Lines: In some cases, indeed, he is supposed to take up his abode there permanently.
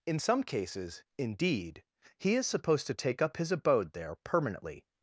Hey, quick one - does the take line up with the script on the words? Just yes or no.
yes